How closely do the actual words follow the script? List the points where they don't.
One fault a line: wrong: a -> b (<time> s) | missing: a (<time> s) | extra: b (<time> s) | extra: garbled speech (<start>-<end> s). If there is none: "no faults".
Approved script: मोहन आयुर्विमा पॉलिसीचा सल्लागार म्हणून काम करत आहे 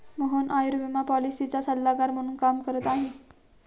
no faults